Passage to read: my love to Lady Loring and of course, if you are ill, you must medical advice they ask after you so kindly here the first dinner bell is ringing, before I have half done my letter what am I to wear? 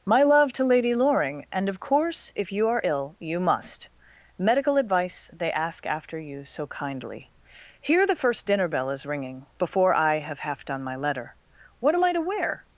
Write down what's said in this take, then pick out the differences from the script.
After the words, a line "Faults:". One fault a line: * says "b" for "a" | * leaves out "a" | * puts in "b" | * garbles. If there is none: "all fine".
my love to Lady Loring and of course, if you are ill, you must medical advice they ask after you so kindly here the first dinner bell is ringing, before I have half done my letter what am I to wear?
Faults:
all fine